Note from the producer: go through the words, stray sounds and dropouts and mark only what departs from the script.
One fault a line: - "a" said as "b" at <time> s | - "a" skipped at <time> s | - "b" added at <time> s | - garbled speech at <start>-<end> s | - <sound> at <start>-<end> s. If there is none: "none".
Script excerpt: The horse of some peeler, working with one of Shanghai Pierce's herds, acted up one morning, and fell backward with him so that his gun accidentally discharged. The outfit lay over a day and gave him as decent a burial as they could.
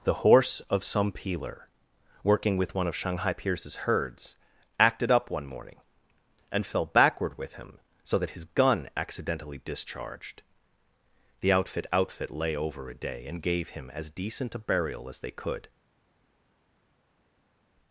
- "outfit" added at 11.9 s